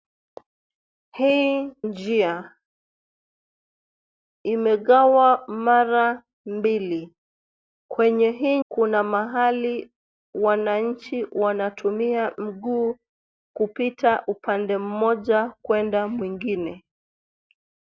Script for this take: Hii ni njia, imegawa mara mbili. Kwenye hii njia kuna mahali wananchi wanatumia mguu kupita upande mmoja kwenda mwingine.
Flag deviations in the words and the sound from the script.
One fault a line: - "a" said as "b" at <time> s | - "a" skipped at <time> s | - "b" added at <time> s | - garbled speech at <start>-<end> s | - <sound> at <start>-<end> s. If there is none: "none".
- "ni" skipped at 1.7 s
- "njia" skipped at 8.6 s